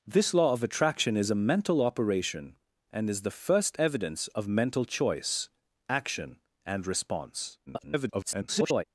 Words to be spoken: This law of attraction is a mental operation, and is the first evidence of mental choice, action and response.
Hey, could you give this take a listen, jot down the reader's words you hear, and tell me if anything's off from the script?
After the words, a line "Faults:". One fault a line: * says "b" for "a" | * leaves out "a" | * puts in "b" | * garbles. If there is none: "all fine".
This law of attraction is a mental operation, and is the first evidence of mental choice, action and response. [garbled]
Faults:
* garbles